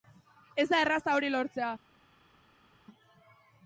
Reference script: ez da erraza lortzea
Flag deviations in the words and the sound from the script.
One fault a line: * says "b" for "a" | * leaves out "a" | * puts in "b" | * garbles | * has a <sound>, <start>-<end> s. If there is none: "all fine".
* puts in "hori"